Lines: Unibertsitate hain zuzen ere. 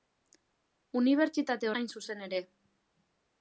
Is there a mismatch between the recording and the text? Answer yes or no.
no